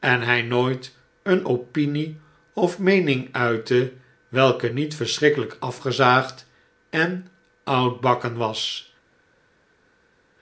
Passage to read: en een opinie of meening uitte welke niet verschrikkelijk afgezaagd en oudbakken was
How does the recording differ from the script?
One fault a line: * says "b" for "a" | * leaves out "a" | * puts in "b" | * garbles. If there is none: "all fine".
* puts in "hij nooit"